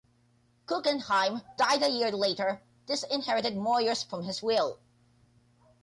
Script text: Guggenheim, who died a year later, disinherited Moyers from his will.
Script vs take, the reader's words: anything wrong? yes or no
yes